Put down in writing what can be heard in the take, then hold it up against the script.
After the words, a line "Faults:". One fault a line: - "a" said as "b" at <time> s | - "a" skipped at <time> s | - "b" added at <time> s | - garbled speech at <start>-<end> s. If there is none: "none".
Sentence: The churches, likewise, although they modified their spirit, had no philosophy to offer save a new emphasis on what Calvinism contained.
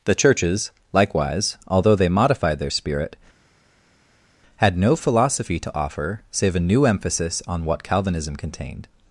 The churches, likewise, although they modified their spirit, had no philosophy to offer save a new emphasis on what Calvinism contained.
Faults:
none